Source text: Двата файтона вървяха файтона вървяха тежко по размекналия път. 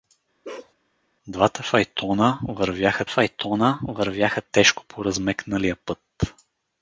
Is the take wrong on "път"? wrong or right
right